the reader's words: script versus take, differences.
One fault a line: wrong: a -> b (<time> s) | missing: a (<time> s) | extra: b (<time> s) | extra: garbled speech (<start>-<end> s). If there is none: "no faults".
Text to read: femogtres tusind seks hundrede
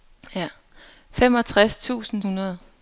missing: seks (2.2 s)